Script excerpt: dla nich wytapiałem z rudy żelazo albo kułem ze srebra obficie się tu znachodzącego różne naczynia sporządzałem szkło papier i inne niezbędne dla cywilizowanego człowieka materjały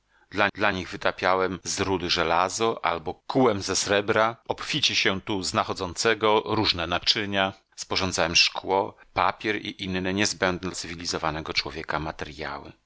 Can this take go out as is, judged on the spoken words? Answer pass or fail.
fail